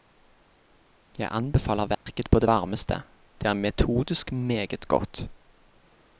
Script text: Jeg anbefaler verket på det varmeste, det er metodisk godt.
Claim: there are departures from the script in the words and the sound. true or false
true